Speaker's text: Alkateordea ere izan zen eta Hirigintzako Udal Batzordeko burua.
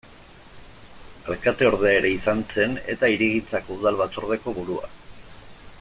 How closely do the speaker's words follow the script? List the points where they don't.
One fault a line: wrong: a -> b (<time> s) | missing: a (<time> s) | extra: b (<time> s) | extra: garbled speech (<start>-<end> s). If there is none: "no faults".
no faults